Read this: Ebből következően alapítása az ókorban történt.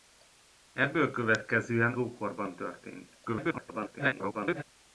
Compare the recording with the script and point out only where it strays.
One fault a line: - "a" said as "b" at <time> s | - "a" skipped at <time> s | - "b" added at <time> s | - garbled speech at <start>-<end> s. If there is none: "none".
- "alapítása az" skipped at 1.9 s
- garbled speech at 3.3-4.6 s